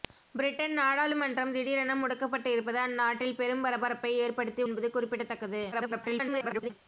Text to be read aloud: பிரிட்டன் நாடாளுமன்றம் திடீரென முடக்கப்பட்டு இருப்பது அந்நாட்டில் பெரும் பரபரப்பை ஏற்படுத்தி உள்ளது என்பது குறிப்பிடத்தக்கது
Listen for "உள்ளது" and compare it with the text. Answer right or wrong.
wrong